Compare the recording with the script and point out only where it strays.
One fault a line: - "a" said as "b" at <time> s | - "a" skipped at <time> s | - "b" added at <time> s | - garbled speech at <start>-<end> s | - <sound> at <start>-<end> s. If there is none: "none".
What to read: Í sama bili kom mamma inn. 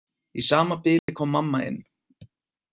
- dropout at 1.0-1.1 s